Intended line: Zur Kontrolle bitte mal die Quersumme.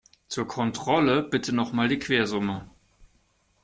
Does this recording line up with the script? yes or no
no